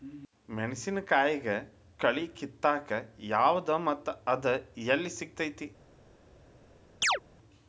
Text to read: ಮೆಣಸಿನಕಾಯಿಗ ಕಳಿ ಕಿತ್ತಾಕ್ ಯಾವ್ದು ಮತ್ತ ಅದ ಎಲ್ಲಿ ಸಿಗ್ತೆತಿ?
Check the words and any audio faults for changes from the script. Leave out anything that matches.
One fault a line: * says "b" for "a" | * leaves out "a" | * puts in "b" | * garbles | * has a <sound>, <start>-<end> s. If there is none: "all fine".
* has a chirp, 7.0-7.2 s